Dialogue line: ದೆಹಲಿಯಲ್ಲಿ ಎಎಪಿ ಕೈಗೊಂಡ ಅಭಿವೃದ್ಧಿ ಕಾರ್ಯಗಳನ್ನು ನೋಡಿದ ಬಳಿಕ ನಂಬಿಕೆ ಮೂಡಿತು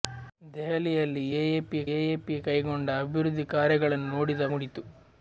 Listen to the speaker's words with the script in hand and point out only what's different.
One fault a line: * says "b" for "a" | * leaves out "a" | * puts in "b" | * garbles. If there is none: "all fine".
* puts in "ಎಎಪಿ"
* leaves out "ಬಳಿಕ ನಂಬಿಕೆ"